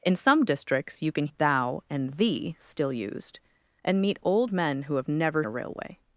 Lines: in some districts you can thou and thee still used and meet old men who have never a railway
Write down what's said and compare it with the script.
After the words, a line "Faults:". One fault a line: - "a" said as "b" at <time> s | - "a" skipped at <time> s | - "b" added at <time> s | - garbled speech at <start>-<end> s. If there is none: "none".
in some districts you can thou and thee still used and meet old men who have never a railway
Faults:
none